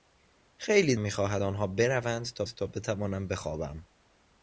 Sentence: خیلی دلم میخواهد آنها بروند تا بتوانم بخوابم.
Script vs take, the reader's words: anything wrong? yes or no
yes